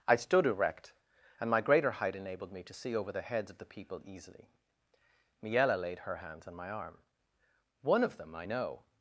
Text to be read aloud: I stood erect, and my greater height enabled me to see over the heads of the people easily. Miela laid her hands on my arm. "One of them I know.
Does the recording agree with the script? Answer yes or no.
yes